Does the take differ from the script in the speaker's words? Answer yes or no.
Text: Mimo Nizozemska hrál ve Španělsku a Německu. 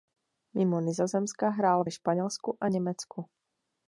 no